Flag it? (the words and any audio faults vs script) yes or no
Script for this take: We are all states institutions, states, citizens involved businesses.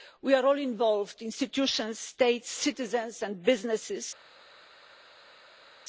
yes